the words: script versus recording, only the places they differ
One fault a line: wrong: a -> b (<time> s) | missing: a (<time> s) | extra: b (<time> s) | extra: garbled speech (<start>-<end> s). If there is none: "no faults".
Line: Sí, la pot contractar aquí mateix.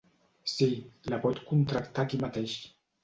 no faults